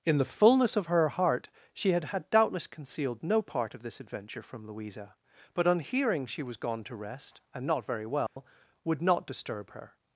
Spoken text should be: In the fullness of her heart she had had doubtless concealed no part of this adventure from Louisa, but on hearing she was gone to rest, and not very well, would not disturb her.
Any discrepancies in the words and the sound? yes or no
yes